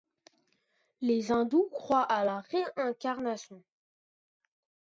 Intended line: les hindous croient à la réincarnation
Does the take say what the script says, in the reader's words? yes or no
yes